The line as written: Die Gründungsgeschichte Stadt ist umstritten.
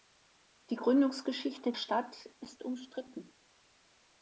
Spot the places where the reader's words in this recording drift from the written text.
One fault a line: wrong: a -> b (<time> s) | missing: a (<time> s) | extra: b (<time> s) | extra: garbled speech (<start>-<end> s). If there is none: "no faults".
no faults